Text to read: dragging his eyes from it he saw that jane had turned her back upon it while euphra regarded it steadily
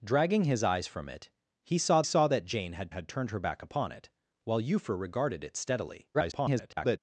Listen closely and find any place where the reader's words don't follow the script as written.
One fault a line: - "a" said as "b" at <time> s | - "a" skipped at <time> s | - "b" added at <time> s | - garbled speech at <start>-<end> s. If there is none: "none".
- "saw" added at 2.0 s
- "had" added at 2.9 s
- garbled speech at 6.1-7.0 s